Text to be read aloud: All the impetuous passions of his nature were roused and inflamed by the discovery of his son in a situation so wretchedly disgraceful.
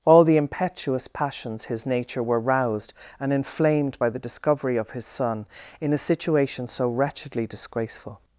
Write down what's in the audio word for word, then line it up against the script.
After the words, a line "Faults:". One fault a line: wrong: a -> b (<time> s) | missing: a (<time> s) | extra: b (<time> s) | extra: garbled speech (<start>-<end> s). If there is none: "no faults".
All the impetuous passions his nature were roused and inflamed by the discovery of his son in a situation so wretchedly disgraceful.
Faults:
missing: of (1.6 s)